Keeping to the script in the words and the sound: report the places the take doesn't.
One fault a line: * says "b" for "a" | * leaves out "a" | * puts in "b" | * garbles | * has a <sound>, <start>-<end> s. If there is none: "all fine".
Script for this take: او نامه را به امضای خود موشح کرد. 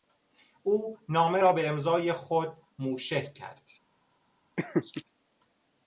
* has a laugh, 4.6-5.0 s